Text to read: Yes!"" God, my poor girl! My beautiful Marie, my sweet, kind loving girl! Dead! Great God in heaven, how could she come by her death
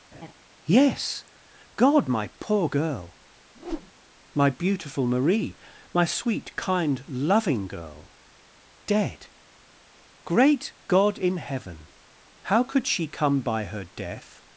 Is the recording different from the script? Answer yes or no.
no